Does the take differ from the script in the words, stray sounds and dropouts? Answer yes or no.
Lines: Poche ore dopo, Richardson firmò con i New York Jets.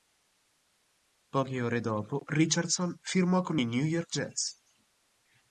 no